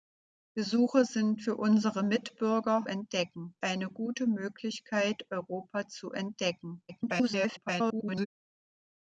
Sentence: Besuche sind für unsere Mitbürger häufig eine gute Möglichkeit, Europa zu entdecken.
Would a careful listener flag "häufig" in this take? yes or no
yes